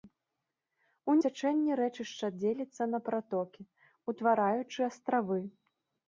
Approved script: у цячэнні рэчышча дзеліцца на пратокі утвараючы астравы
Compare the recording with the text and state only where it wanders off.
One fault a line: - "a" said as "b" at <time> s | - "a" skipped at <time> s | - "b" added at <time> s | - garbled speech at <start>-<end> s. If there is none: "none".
none